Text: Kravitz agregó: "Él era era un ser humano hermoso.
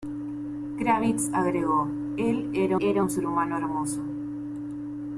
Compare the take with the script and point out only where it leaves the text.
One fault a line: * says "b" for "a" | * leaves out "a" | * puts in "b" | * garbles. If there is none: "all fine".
all fine